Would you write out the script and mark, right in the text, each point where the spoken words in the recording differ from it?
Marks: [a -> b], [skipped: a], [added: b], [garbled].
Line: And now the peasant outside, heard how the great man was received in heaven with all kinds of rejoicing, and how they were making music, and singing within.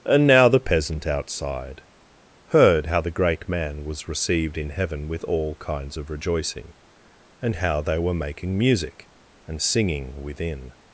And now the peasant outside, heard how the great man was received in heaven with all kinds of rejoicing, and how they were making music, and singing within.